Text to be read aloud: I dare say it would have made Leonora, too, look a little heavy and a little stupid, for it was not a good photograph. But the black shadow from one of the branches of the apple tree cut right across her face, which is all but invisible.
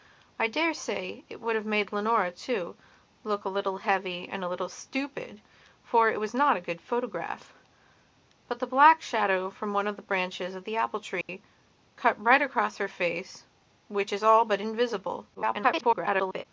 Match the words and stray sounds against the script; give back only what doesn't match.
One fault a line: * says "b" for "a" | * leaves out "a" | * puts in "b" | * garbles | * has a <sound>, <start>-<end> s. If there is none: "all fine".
* has a dropout, 11.2-11.3 s
* garbles